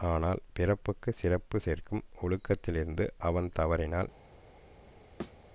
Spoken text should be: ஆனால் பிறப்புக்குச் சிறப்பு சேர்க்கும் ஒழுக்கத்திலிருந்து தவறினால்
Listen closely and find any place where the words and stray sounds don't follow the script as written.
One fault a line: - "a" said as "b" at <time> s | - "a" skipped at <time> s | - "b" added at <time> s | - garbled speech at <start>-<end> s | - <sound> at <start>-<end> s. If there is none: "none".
- "அவன்" added at 3.2 s
- thud at 5.2-5.4 s